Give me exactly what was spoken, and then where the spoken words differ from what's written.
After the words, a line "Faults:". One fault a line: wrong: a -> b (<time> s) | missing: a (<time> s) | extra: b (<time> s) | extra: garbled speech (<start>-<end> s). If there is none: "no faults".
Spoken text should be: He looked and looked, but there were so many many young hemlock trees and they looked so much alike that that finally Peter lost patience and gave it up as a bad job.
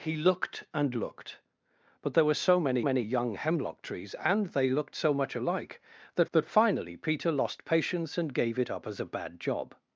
He looked and looked, but there were so many many young hemlock trees and they looked so much alike that that finally Peter lost patience and gave it up as a bad job.
Faults:
no faults